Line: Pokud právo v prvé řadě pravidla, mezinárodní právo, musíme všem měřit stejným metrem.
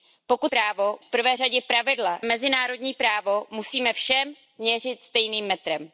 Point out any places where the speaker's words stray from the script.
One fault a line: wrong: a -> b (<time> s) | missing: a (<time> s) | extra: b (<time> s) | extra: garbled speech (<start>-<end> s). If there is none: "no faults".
no faults